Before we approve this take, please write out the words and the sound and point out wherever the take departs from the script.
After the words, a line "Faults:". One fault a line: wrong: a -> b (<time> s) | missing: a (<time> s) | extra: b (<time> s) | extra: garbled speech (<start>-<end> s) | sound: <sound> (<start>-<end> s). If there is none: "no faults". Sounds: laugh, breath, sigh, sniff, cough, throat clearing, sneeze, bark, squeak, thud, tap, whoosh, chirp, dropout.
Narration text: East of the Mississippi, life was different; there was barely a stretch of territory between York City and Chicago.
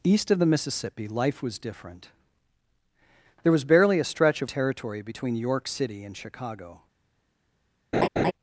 East of the Mississippi, life was different; there was barely a stretch of territory between York City and Chicago.
Faults:
sound: laugh (7.9-8.3 s)